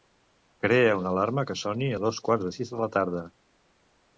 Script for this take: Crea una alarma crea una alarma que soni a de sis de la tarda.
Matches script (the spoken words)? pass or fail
fail